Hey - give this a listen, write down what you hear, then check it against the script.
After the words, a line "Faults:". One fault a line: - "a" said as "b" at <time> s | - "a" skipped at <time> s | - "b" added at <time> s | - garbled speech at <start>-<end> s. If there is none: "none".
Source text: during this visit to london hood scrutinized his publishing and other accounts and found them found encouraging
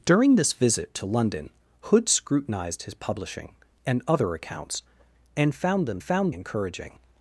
during this visit to london hood scrutinized his publishing and other accounts and found them found encouraging
Faults:
none